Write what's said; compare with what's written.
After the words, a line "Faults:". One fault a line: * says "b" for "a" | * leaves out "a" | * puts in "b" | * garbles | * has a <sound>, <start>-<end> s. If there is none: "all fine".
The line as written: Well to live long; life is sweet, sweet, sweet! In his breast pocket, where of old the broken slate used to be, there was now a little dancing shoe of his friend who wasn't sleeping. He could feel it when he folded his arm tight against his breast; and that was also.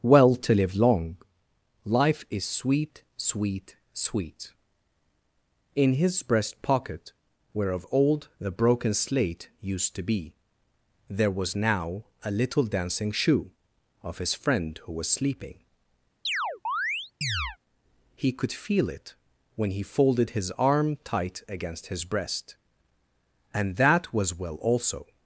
Well to live long; life is sweet, sweet, sweet! In his breast pocket, where of old the broken slate used to be, there was now a little dancing shoe of his friend who was sleeping. He could feel it when he folded his arm tight against his breast; and that was well also.
Faults:
* says "was" for "wasn't"
* has a chirp, 16.2-17.6 s
* puts in "well"